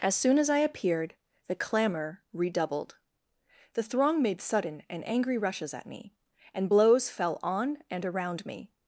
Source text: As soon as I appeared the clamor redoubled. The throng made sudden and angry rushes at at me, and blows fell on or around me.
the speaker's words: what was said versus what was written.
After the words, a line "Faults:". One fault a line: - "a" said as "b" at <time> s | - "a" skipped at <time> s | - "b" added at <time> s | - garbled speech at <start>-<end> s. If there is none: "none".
As soon as I appeared the clamor redoubled. The throng made sudden and angry rushes at me, and blows fell on and around me.
Faults:
- "at" skipped at 5.9 s
- "or" said as "and" at 7.9 s